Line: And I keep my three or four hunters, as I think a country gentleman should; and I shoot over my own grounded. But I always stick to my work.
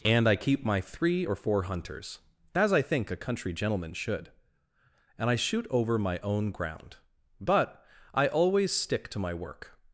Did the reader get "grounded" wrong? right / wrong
wrong